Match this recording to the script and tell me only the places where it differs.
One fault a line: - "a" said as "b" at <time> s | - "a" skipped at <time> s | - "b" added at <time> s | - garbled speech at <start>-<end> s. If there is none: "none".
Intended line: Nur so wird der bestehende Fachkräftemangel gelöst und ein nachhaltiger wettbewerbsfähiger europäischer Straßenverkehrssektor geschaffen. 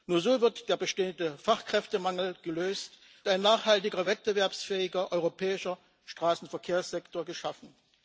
- "und" skipped at 2.9 s